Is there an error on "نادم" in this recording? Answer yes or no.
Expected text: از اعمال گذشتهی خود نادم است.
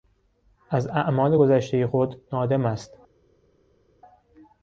no